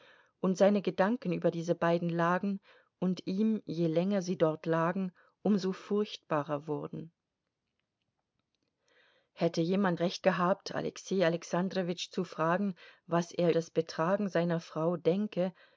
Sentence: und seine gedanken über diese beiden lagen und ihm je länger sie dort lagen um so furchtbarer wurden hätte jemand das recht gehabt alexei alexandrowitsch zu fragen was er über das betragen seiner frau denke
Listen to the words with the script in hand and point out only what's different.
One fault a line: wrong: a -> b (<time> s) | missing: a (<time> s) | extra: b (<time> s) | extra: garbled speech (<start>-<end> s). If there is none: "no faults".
missing: das (10.0 s)
missing: über (13.5 s)